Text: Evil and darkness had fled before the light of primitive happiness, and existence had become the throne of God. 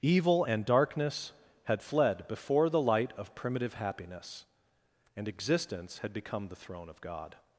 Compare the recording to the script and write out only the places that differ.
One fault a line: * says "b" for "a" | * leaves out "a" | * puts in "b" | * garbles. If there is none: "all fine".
all fine